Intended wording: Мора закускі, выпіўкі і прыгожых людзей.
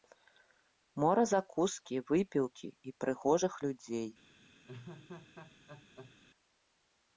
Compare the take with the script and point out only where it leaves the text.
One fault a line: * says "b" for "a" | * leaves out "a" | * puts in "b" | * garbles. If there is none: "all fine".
all fine